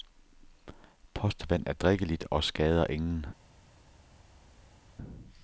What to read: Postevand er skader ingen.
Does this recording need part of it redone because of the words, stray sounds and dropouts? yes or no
yes